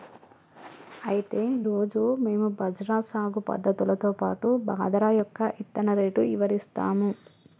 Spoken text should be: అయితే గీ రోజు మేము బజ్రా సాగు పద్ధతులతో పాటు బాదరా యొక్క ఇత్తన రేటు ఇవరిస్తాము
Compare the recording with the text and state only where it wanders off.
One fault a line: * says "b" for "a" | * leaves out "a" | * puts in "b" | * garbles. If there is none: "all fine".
* leaves out "గీ"